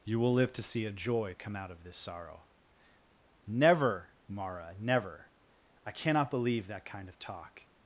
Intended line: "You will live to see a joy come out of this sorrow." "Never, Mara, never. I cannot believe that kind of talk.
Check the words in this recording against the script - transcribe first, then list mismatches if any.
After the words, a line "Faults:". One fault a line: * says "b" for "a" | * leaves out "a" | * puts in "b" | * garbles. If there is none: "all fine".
"You will live to see a joy come out of this sorrow." "Never, Mara, never. I cannot believe that kind of talk.
Faults:
all fine